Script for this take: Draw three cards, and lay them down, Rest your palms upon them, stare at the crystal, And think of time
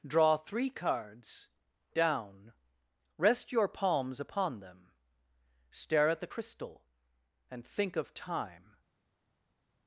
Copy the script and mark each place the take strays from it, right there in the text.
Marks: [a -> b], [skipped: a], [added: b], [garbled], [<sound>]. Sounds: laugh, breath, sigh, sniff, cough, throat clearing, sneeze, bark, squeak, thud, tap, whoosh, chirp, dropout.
Draw three cards, [skipped: and lay them] down, Rest your palms upon them, stare at the crystal, And think of time